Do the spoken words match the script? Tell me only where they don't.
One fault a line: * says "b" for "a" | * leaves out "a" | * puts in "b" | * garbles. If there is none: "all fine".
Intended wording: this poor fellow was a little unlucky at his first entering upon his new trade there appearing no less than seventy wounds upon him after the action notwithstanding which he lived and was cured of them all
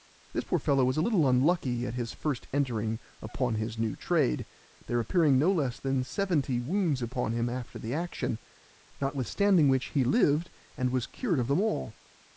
all fine